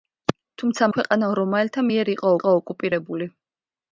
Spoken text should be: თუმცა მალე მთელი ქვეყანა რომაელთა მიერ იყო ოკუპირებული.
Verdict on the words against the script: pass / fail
fail